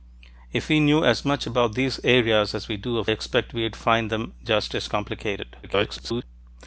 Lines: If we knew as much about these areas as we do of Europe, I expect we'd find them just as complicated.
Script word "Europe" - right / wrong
wrong